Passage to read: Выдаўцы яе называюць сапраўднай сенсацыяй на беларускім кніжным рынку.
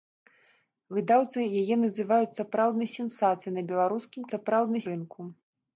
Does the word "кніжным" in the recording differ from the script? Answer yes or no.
yes